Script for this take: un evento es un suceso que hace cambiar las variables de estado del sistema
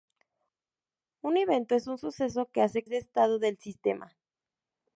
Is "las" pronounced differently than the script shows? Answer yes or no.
yes